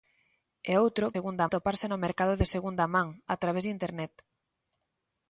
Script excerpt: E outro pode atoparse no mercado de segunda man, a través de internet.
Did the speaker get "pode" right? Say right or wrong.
wrong